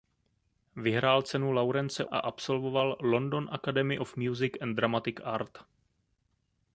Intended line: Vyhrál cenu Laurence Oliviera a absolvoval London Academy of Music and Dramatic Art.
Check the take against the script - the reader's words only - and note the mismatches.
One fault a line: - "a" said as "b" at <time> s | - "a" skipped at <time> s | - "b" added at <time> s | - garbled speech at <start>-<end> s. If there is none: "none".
- "Oliviera" skipped at 2.0 s